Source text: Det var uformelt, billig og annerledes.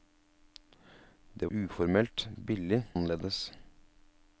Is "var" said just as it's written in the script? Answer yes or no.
no